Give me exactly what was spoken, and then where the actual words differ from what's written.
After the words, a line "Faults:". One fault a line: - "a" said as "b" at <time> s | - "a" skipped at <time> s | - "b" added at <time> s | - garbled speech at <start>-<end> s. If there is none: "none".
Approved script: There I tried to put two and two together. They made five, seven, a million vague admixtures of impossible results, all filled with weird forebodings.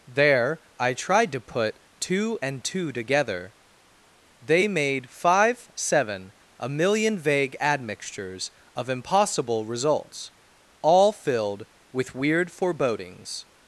There I tried to put two and two together. They made five, seven, a million vague admixtures of impossible results, all filled with weird forebodings.
Faults:
none